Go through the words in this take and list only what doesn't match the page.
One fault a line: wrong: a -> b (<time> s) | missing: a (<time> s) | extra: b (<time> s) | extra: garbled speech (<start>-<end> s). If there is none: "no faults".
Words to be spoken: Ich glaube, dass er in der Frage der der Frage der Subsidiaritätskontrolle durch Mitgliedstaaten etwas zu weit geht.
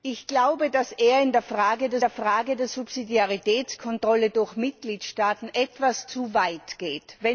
no faults